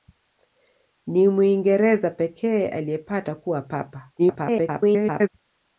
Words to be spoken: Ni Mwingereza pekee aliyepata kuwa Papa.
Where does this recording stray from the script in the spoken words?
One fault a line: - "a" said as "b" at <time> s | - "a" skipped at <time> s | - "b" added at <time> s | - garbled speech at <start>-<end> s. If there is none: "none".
- garbled speech at 4.2-5.3 s